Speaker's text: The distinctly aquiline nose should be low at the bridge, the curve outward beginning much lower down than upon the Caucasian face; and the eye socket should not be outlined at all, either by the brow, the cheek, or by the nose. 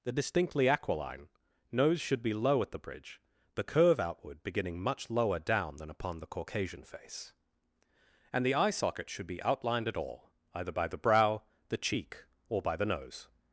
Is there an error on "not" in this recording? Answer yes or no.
yes